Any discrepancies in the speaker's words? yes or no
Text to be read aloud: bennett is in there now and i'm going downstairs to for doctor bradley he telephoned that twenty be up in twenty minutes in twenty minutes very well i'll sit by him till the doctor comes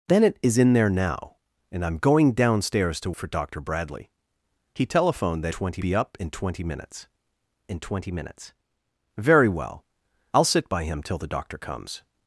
no